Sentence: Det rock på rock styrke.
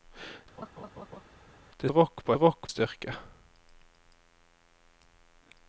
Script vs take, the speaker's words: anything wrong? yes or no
no